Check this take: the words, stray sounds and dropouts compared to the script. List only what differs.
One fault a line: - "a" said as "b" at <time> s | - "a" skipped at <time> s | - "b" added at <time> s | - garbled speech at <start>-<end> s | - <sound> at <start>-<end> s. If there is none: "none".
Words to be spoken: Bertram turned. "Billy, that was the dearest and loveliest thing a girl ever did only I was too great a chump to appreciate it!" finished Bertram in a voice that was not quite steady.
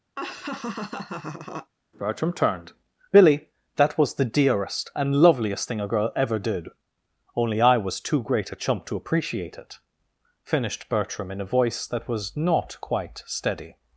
- laugh at 0.2-1.7 s